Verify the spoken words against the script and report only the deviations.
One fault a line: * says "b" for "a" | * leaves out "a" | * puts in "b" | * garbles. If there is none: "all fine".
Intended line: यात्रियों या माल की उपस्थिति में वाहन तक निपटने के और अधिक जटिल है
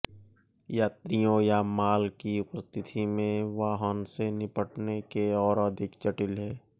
* says "से" for "तक"